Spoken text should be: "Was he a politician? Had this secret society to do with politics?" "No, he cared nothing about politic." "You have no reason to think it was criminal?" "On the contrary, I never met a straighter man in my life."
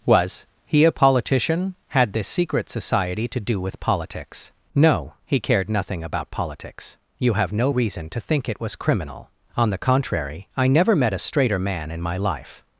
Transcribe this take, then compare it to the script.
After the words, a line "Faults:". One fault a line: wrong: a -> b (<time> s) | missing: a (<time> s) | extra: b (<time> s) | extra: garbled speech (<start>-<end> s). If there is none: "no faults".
"Was he a politician? Had this secret society to do with politics?" "No, he cared nothing about politics." "You have no reason to think it was criminal?" "On the contrary, I never met a straighter man in my life."
Faults:
wrong: politic -> politics (6.3 s)